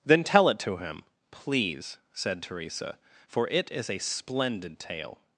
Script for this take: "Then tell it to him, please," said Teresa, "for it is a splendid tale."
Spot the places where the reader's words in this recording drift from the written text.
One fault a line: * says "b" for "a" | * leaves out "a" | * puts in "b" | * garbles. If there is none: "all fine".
all fine